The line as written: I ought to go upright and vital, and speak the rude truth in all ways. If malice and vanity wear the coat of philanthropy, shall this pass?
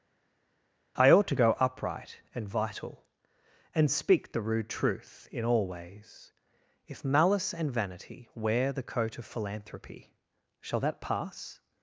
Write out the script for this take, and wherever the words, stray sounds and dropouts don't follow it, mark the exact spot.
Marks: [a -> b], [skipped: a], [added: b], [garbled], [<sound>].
I ought to go upright and vital, and speak the rude truth in all ways. If malice and vanity wear the coat of philanthropy, shall [this -> that] pass?